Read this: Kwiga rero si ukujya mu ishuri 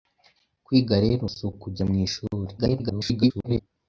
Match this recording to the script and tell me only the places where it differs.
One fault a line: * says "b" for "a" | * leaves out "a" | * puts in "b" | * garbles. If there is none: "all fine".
* garbles